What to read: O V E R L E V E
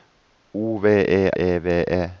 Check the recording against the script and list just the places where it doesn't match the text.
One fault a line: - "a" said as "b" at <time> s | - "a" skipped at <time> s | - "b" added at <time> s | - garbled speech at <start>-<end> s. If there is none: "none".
- "R L" skipped at 1.3 s